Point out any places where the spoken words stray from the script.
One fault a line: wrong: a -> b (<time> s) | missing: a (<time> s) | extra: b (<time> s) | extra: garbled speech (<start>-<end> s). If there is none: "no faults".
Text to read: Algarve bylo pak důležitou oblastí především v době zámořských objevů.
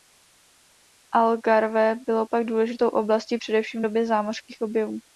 no faults